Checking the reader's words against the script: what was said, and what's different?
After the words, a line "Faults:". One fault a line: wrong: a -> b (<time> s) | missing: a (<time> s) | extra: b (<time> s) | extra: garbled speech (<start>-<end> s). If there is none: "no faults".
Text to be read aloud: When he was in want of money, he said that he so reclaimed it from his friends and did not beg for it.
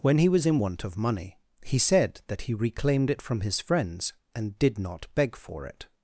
When he was in want of money, he said that he reclaimed it from his friends and did not beg for it.
Faults:
missing: so (2.5 s)